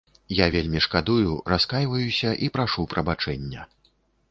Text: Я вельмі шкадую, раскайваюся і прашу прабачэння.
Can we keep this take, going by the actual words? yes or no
yes